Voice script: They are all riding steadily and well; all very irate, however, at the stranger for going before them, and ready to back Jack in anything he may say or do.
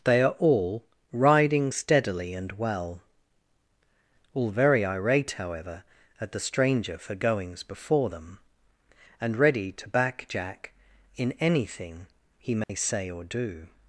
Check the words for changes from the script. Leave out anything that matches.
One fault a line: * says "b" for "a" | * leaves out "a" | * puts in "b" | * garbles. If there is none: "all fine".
* says "goings" for "going"